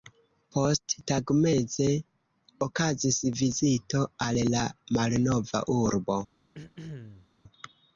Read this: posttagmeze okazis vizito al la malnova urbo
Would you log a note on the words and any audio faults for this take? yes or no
yes